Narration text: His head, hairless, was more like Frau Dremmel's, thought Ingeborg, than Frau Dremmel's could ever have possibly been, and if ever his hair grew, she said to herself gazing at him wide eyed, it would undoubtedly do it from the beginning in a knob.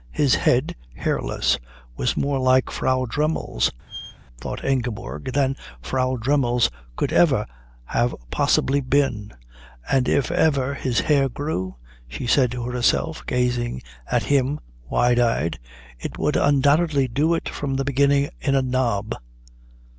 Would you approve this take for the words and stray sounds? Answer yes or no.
no